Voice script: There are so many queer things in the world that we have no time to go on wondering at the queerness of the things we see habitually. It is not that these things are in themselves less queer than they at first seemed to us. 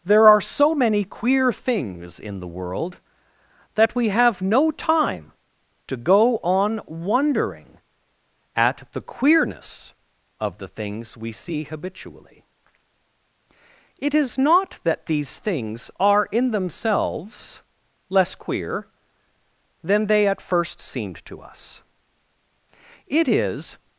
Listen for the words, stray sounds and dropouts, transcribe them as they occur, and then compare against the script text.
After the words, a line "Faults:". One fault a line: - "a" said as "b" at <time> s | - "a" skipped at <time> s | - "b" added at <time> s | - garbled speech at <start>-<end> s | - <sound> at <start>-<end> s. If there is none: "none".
There are so many queer things in the world that we have no time to go on wondering at the queerness of the things we see habitually. It is not that these things are in themselves less queer than they at first seemed to us. It is
Faults:
- "It is" added at 23.1 s